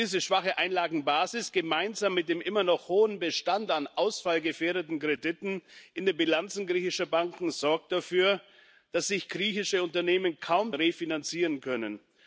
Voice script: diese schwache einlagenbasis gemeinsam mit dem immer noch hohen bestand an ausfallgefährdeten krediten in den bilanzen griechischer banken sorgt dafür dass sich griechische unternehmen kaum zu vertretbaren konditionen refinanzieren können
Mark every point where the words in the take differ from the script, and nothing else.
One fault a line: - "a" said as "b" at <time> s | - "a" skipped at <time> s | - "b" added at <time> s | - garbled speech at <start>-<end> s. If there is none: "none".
- "zu vertretbaren konditionen" skipped at 10.7 s